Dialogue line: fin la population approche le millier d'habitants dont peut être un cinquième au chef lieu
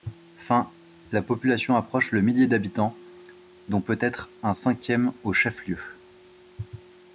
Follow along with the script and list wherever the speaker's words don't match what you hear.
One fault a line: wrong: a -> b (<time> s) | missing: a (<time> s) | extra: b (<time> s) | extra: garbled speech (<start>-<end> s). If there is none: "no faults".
no faults